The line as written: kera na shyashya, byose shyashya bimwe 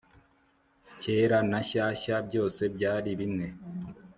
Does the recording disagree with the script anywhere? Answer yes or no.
yes